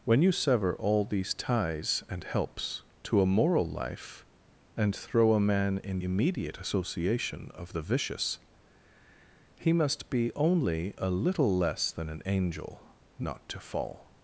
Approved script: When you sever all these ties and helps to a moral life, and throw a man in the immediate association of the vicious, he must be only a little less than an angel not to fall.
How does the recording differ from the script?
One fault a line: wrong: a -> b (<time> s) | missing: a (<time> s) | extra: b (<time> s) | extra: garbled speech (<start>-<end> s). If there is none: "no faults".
missing: the (6.0 s)